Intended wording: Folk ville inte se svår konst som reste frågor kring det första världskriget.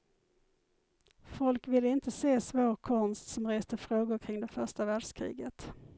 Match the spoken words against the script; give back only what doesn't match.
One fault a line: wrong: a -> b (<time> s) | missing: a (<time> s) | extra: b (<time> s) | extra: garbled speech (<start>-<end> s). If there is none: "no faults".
no faults